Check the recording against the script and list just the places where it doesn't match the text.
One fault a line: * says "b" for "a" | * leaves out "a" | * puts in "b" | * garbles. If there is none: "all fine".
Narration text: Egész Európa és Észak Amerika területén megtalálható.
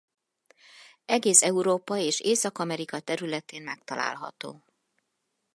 all fine